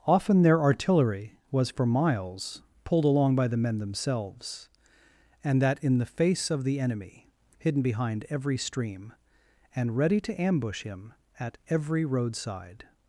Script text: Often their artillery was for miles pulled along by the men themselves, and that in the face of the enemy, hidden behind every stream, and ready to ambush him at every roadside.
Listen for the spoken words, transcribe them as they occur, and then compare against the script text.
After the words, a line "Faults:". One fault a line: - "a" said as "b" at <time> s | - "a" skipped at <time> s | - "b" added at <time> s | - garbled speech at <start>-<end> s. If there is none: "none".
Often their artillery was for miles pulled along by the men themselves, and that in the face of the enemy, hidden behind every stream, and ready to ambush him at every roadside.
Faults:
none